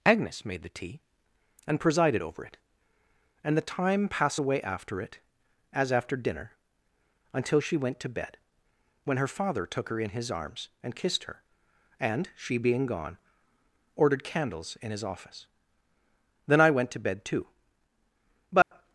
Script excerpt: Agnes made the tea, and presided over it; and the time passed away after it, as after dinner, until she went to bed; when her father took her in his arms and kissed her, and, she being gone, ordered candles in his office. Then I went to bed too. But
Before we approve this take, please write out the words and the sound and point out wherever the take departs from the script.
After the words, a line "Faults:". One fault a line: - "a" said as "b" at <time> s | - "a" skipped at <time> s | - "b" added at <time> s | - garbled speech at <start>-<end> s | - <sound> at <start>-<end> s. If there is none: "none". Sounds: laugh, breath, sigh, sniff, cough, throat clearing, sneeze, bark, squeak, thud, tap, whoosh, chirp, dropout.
Agnes made the tea, and presided over it; and the time passed away after it, as after dinner, until she went to bed; when her father took her in his arms and kissed her, and, she being gone, ordered candles in his office. Then I went to bed too. But
Faults:
- dropout at 18.6-18.7 s